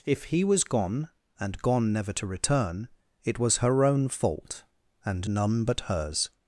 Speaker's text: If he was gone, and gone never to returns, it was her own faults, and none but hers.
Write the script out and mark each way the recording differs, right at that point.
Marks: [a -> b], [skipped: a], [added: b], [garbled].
If he was gone, and gone never to [returns, -> return] it was her own [faults, -> fault] and none but hers.